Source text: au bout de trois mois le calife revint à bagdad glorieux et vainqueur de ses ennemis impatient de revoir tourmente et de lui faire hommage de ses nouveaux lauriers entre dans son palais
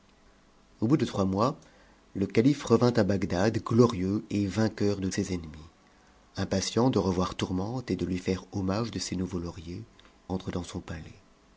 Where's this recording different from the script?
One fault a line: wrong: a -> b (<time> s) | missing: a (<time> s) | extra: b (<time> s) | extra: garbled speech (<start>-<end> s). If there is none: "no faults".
no faults